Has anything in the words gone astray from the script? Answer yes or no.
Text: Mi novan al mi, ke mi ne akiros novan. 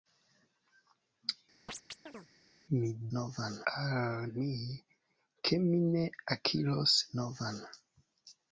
no